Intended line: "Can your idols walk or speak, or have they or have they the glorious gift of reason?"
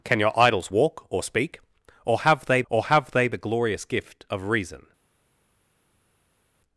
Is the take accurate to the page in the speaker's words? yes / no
yes